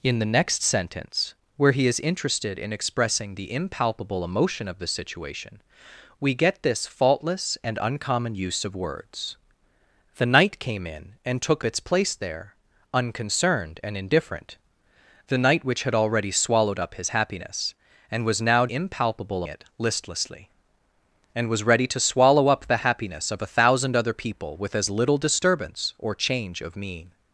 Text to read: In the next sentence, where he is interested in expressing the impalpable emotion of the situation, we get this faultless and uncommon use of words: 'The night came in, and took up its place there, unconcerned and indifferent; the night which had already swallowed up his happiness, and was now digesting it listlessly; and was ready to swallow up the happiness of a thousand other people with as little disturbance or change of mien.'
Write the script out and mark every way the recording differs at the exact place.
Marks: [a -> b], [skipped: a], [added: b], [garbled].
In the next sentence, where he is interested in expressing the impalpable emotion of the situation, we get this faultless and uncommon use of words: 'The night came in, and took [skipped: up] its place there, unconcerned and indifferent; the night which had already swallowed up his happiness, and was now [digesting -> impalpable] it listlessly; and was ready to swallow up the happiness of a thousand other people with as little disturbance or change of mien.'